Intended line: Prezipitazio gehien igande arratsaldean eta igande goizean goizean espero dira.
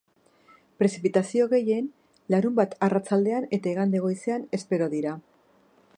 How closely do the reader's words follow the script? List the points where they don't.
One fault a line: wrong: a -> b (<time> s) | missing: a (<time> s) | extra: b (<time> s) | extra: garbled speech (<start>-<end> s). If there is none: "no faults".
wrong: igande -> larunbat (2.4 s)
missing: goizean (4.5 s)